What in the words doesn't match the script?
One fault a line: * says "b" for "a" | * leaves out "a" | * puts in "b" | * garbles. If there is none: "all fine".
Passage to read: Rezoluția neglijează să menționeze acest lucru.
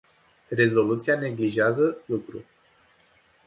* leaves out "să menționeze acest"